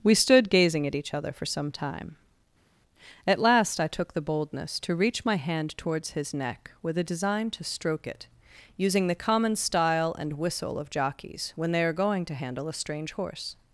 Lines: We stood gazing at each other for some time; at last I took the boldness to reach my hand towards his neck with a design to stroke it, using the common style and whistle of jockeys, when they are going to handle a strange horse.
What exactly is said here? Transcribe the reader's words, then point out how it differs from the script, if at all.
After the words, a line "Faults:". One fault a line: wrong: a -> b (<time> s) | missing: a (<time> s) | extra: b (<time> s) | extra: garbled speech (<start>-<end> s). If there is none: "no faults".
We stood gazing at each other for some time; at last I took the boldness to reach my hand towards his neck with a design to stroke it, using the common style and whistle of jockeys, when they are going to handle a strange horse.
Faults:
no faults